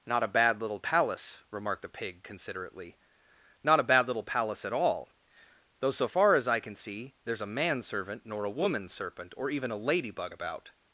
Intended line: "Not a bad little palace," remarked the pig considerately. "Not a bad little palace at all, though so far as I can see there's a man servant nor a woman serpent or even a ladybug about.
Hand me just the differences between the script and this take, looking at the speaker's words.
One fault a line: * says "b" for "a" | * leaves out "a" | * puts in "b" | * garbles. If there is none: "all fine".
all fine